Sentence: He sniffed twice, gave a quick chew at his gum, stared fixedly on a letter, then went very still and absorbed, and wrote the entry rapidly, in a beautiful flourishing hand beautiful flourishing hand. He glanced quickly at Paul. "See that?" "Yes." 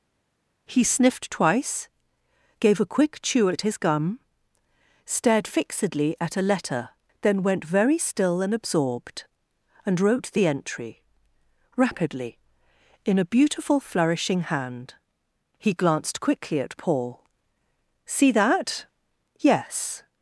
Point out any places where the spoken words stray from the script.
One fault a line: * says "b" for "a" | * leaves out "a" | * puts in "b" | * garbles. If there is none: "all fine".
* says "at" for "on"
* leaves out "beautiful flourishing hand"